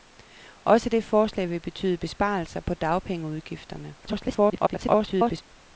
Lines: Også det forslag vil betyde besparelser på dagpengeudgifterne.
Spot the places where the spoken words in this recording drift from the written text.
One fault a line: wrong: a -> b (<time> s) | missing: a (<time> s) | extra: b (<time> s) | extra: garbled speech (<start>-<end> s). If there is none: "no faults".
extra: garbled speech (4.0-5.4 s)